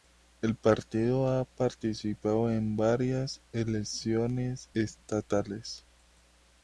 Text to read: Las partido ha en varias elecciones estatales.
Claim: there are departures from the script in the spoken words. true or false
true